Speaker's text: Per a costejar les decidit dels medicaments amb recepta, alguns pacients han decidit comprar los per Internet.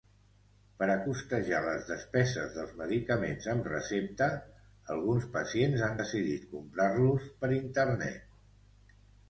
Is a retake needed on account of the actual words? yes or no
yes